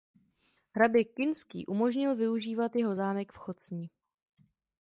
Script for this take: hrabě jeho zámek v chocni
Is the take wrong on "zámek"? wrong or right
right